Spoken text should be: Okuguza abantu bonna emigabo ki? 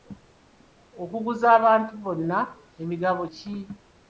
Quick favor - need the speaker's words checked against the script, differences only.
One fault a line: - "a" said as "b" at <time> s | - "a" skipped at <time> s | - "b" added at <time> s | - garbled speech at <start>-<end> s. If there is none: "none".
none